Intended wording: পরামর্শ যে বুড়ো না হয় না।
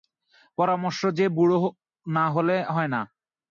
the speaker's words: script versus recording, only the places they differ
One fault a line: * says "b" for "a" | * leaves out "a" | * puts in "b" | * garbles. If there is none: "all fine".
* puts in "হলে"